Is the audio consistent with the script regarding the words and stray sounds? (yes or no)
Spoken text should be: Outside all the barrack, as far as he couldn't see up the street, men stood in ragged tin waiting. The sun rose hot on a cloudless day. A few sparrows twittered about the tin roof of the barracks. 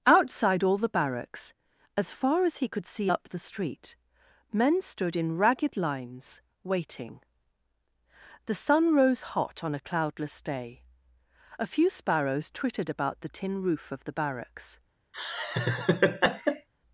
no